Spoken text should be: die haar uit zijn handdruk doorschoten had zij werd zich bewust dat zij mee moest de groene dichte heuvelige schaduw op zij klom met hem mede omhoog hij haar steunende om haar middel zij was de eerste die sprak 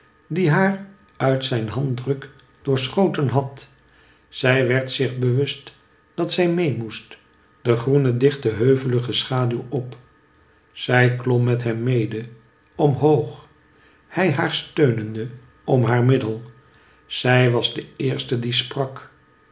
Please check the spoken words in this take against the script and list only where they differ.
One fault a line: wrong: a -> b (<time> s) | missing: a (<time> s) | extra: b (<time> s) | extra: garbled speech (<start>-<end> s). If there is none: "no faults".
no faults